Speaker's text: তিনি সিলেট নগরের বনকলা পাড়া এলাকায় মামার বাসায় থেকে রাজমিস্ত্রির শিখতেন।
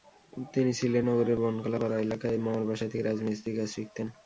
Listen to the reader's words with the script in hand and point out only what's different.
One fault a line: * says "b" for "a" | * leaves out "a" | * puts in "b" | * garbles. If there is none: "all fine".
* puts in "কাজ"